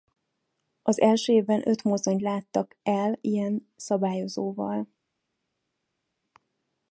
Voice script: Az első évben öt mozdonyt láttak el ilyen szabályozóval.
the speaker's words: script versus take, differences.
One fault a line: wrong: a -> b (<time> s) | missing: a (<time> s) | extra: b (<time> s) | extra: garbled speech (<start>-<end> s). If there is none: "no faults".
no faults